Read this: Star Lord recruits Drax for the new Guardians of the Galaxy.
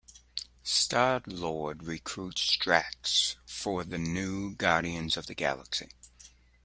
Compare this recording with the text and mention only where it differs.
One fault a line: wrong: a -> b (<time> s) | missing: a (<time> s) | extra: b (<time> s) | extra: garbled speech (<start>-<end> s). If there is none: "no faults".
no faults